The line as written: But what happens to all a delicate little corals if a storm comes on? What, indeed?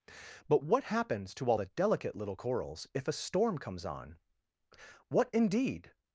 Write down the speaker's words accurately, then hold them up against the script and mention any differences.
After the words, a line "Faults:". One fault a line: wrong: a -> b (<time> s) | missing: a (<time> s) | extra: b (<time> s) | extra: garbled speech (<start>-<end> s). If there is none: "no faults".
But what happens to all the delicate little corals if a storm comes on? What, indeed?
Faults:
wrong: a -> the (1.5 s)